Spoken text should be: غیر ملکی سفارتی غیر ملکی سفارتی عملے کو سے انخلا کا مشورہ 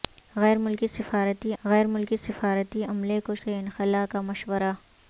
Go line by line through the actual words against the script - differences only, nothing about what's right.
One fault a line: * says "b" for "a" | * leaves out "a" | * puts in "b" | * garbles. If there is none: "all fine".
all fine